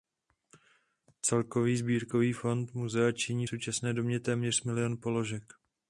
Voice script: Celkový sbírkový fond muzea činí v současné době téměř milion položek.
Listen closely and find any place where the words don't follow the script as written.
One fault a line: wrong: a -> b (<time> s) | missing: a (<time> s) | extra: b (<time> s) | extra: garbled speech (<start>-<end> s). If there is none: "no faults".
no faults